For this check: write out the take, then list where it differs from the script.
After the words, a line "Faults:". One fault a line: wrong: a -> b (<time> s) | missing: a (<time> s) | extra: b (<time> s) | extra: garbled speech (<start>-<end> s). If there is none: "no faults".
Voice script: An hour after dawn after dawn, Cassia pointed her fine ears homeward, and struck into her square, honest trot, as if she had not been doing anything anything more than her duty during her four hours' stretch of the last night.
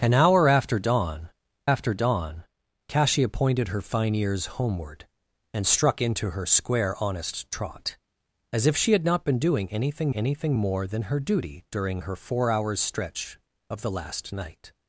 An hour after dawn after dawn, Cassia pointed her fine ears homeward, and struck into her square, honest trot, as if she had not been doing anything anything more than her duty during her four hours' stretch of the last night.
Faults:
no faults